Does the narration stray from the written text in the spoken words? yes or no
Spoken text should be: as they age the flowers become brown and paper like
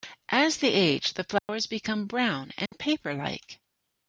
no